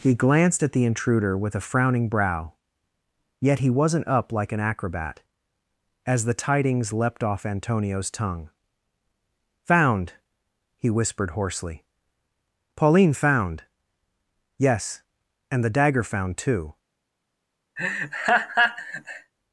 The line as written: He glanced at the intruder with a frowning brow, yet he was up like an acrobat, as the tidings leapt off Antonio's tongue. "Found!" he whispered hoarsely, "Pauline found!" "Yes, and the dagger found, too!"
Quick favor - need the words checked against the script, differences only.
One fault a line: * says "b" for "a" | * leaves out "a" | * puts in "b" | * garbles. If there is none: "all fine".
* says "wasn't" for "was"